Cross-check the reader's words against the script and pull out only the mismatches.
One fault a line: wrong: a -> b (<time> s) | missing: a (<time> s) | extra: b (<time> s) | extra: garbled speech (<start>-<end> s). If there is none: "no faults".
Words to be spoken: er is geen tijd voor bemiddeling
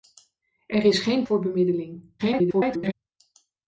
missing: tijd (1.3 s)
extra: garbled speech (2.2-2.9 s)